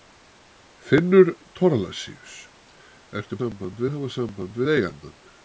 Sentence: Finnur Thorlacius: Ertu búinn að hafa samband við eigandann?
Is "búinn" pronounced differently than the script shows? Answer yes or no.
yes